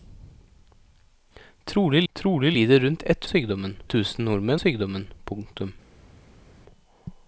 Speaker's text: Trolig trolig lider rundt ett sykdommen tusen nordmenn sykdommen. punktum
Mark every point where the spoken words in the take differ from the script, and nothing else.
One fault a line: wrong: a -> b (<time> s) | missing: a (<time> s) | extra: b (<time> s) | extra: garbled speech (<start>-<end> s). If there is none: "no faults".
no faults